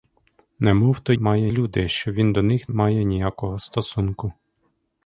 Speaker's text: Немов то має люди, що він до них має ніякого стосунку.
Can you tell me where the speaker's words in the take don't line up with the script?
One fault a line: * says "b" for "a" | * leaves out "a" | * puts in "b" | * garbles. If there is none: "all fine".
all fine